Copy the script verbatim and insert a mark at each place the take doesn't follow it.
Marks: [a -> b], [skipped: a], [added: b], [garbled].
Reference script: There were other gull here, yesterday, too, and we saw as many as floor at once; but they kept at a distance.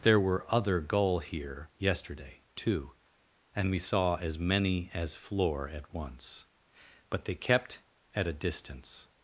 There were other gull here, yesterday, too, and we saw as many as floor at once; but they kept at a distance.